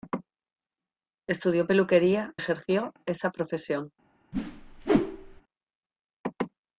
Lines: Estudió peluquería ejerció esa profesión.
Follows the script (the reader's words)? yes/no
yes